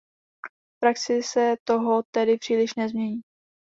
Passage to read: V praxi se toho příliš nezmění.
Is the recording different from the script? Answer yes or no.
yes